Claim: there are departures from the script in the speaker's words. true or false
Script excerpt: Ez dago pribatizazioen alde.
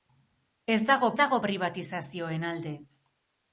true